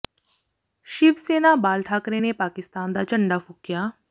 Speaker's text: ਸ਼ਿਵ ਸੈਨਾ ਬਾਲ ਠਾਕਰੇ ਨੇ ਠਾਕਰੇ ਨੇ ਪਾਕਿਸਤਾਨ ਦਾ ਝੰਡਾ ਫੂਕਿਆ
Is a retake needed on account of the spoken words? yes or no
yes